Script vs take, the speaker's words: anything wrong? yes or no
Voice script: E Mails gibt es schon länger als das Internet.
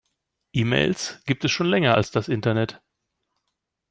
no